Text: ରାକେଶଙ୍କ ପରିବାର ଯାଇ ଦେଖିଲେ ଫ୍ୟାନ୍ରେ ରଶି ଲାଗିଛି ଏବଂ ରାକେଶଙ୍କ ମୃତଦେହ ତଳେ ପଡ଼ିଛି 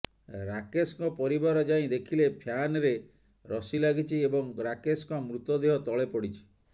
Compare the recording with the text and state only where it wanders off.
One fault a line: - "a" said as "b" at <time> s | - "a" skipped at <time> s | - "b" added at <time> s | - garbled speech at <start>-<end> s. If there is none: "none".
none